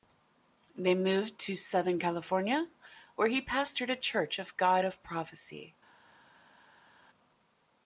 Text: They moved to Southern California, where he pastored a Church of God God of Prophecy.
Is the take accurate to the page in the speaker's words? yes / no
no